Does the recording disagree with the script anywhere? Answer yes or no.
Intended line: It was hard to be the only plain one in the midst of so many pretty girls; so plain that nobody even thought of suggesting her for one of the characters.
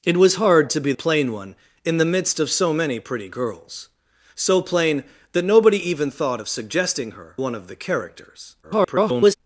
yes